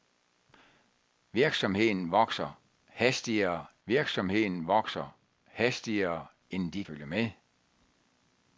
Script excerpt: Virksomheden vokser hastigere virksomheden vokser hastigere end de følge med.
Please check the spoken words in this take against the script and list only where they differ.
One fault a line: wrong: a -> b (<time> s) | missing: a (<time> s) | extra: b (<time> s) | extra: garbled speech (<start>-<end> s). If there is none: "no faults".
no faults